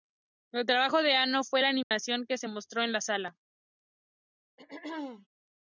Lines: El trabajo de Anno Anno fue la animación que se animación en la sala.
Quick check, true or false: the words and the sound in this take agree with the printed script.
false